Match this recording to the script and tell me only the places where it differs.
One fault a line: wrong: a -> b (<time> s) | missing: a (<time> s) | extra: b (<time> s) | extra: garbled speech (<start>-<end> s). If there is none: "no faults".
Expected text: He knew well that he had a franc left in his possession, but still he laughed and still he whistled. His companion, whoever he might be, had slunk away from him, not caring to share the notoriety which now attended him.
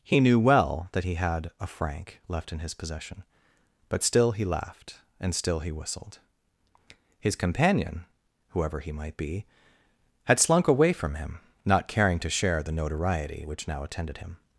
no faults